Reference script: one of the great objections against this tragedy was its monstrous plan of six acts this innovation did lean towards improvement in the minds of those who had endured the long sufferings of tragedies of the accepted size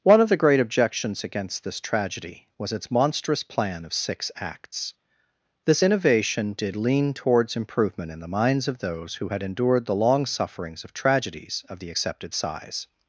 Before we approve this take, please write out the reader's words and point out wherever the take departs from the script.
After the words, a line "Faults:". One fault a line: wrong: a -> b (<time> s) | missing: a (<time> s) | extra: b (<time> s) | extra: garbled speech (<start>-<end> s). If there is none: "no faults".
one of the great objections against this tragedy was its monstrous plan of six acts this innovation did lean towards improvement in the minds of those who had endured the long sufferings of tragedies of the accepted size
Faults:
no faults